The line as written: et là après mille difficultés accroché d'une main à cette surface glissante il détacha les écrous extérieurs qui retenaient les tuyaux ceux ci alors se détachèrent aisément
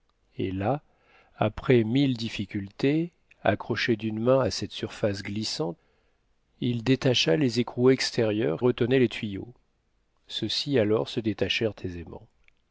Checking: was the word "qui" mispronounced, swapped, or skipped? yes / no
yes